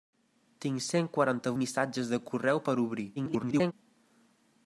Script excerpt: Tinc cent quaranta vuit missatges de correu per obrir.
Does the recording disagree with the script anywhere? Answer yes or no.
yes